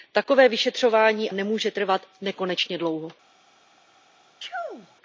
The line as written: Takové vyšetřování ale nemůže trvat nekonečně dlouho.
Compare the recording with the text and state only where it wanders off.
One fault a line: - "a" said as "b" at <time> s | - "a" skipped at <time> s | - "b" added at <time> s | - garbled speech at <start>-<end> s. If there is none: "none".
- "ale" skipped at 1.3 s